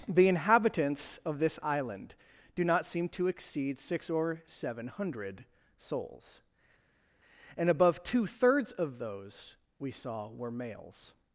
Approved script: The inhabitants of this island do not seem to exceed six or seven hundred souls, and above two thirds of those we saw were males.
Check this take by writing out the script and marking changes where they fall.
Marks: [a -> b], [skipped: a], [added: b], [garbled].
The inhabitants of this island do not seem to exceed six or seven hundred souls, and above two thirds of those we saw were males.